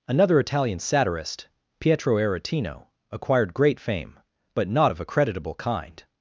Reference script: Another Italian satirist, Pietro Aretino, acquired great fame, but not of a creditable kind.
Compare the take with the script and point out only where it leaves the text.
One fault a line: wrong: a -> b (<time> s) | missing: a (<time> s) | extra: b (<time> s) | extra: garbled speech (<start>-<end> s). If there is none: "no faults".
no faults